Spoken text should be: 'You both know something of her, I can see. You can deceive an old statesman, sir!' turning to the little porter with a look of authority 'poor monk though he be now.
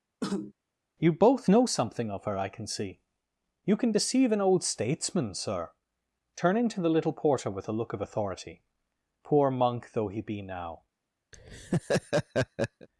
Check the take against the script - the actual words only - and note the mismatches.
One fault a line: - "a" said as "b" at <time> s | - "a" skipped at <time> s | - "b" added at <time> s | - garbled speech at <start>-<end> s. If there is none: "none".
none